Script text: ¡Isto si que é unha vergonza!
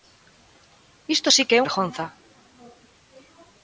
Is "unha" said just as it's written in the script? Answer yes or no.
no